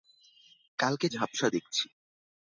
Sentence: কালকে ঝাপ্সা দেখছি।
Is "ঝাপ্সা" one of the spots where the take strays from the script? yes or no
no